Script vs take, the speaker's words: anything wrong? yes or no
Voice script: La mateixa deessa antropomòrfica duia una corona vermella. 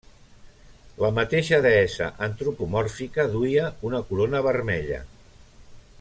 no